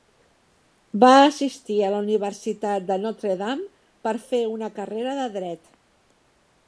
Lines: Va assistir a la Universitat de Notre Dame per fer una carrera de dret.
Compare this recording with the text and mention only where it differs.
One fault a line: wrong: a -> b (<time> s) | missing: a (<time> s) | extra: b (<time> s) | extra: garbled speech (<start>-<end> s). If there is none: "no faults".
no faults